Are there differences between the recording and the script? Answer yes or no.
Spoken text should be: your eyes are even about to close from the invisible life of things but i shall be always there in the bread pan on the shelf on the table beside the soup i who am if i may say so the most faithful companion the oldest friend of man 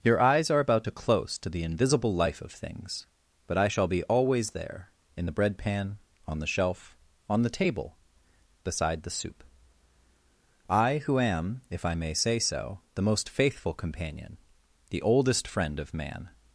yes